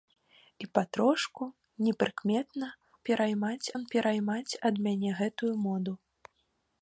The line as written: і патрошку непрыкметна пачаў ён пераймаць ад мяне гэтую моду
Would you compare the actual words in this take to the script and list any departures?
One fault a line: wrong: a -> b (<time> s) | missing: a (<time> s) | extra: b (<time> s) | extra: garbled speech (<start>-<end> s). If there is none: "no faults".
wrong: пачаў -> пераймаць (3.1 s)